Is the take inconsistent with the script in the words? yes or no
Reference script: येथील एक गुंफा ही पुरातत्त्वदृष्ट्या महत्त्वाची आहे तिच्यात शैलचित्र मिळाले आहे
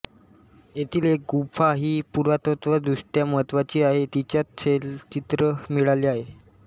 no